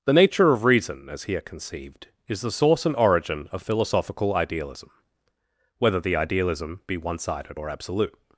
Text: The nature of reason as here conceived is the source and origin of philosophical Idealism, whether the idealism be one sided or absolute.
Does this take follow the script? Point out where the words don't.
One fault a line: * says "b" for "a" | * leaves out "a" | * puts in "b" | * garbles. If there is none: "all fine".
all fine